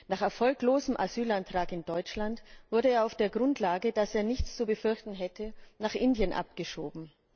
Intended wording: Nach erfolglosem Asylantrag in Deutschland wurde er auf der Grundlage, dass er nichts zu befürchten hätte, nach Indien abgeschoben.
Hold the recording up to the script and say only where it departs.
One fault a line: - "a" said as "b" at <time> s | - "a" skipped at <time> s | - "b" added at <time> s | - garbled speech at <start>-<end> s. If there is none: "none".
none